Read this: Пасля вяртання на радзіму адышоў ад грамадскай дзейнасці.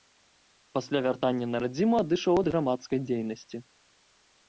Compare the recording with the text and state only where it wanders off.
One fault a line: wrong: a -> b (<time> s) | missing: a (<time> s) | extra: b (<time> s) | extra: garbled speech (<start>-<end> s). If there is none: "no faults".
no faults